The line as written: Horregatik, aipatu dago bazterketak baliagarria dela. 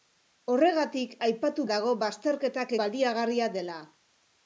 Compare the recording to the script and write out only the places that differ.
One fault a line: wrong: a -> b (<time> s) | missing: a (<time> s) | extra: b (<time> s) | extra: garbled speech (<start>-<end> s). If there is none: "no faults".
no faults